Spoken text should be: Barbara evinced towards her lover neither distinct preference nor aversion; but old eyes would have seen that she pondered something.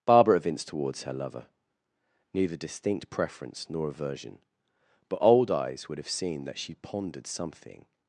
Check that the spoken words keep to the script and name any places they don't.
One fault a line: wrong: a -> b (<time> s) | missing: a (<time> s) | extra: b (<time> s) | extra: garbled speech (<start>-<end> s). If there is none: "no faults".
no faults